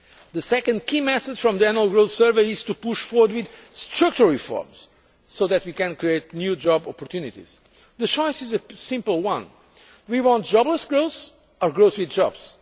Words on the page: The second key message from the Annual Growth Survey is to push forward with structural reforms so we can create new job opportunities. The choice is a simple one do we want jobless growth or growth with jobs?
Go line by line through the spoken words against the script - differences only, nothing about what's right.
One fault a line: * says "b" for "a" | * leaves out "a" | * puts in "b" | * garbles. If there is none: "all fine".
* puts in "that"